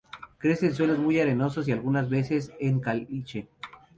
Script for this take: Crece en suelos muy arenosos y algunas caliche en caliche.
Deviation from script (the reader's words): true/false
true